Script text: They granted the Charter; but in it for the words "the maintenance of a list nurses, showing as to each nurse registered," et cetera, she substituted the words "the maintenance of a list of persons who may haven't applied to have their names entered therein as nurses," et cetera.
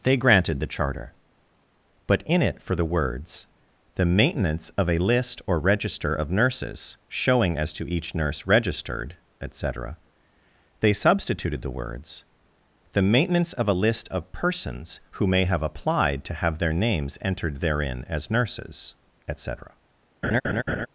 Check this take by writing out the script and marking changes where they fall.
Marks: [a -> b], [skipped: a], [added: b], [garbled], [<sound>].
They granted the Charter; but in it for the words "the maintenance of a list [added: or register of] nurses, showing as to each nurse registered," et cetera, [she -> they] substituted the words "the maintenance of a list of persons who may [haven't -> have] applied to have their names entered therein as nurses," et cetera. [laugh]